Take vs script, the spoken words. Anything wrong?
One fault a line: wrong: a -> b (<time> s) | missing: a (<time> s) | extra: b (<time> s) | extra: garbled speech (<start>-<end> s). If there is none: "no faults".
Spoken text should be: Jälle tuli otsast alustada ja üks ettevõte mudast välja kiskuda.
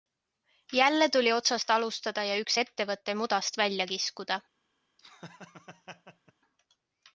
no faults